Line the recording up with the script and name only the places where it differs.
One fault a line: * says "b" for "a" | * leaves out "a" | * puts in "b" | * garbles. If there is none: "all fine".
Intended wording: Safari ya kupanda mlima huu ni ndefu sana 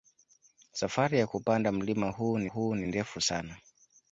* puts in "huu ni"